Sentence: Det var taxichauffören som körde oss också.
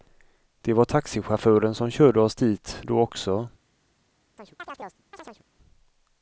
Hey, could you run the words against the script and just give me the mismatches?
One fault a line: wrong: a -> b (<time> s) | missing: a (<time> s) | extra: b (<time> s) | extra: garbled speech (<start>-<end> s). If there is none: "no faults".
extra: dit då (2.3 s)